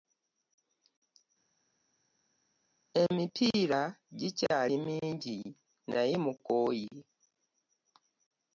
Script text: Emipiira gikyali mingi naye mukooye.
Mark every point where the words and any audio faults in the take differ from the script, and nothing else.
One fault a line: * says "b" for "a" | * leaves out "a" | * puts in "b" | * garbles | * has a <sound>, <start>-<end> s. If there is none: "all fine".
all fine